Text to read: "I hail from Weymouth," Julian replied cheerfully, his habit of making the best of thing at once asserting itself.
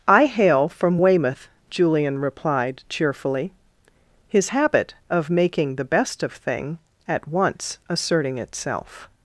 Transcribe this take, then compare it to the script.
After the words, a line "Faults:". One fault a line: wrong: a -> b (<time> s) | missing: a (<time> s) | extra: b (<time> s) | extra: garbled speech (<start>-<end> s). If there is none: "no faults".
"I hail from Weymouth," Julian replied cheerfully, his habit of making the best of thing at once asserting itself.
Faults:
no faults